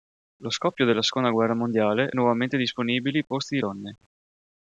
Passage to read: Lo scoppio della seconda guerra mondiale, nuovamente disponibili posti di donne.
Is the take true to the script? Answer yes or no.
yes